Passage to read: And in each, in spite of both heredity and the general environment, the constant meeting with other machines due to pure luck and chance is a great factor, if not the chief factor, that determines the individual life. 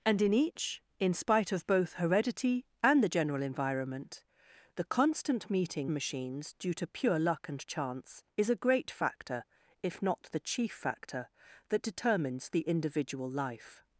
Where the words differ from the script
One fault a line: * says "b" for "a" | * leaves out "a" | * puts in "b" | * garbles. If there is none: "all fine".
* leaves out "with other"